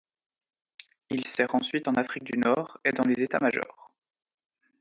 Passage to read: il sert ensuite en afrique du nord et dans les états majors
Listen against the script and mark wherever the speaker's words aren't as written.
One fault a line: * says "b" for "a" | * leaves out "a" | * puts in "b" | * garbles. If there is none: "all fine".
all fine